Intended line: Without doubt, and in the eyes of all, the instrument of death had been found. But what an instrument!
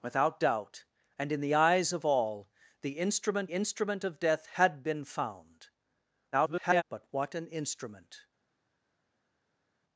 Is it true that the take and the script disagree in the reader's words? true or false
true